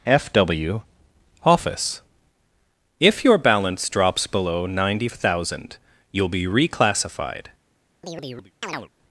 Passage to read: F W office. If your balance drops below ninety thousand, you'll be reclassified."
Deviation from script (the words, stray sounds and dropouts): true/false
true